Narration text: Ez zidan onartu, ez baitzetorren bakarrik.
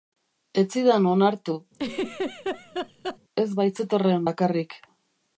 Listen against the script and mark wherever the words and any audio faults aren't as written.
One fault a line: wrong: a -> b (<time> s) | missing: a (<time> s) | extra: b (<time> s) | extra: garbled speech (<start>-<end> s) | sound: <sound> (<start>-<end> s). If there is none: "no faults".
sound: laugh (1.7-3.2 s)